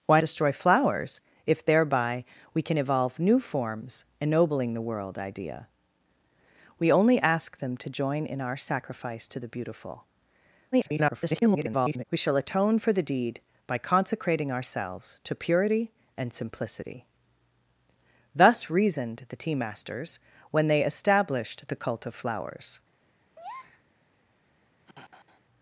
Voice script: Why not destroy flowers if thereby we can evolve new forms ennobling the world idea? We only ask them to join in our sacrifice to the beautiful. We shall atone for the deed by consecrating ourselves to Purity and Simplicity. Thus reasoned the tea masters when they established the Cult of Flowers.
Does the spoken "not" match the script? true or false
false